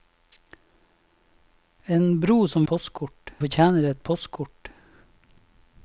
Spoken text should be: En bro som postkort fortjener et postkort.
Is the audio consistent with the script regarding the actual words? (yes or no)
yes